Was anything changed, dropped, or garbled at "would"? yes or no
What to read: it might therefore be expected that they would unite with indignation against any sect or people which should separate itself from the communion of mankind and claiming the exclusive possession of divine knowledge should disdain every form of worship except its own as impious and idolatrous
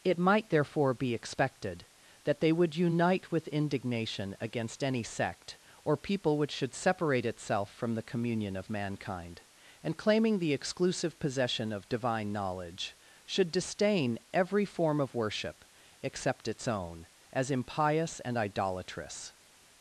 no